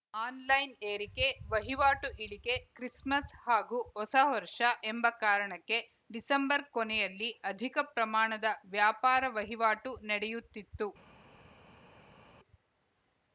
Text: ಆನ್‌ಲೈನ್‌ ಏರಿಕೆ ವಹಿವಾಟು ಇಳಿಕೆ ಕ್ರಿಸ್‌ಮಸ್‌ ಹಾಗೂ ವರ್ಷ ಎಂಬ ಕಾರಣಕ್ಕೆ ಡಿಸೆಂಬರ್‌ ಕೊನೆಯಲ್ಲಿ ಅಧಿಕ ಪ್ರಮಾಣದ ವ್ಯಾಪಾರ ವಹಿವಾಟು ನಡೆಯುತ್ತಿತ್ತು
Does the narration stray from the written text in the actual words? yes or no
yes